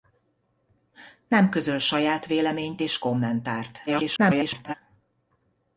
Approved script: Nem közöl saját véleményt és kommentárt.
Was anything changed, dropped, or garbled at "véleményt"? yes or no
no